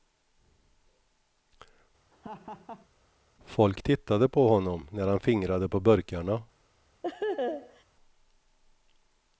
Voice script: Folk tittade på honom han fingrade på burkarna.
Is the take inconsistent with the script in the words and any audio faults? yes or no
yes